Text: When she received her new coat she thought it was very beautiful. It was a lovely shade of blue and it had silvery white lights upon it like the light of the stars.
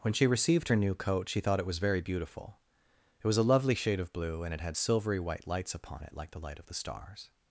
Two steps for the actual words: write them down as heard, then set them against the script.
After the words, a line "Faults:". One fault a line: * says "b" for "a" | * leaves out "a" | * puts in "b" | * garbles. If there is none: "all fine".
When she received her new coat she thought it was very beautiful. It was a lovely shade of blue and it had silvery white lights upon it like the light of the stars.
Faults:
all fine